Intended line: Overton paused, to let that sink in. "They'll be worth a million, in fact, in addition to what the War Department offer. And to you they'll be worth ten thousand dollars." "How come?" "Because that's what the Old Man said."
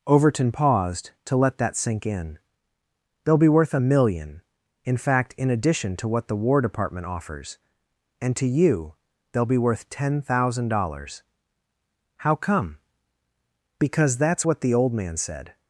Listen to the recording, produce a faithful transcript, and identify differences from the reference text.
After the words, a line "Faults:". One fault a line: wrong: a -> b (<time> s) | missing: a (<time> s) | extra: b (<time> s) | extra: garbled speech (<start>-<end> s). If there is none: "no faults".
Overton paused, to let that sink in. "They'll be worth a million, in fact, in addition to what the War Department offers. And to you they'll be worth ten thousand dollars." "How come?" "Because that's what the Old Man said."
Faults:
wrong: offer -> offers (7.1 s)